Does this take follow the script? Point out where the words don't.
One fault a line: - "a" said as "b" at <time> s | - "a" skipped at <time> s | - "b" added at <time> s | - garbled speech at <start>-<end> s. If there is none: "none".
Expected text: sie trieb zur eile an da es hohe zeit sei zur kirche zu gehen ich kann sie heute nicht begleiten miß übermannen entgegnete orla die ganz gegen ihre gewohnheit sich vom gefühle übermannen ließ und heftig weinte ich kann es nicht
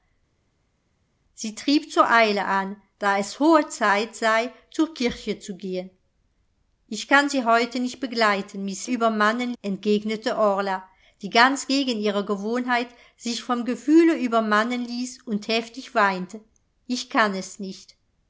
none